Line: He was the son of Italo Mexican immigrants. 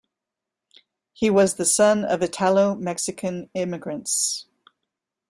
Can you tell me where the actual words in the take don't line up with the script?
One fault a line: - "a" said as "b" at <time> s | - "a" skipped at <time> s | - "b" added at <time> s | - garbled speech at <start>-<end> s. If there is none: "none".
none